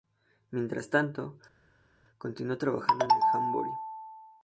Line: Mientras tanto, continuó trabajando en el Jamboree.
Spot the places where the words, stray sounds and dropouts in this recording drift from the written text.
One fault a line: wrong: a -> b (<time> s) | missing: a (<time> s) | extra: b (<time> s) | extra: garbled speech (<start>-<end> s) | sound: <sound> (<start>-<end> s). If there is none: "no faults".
no faults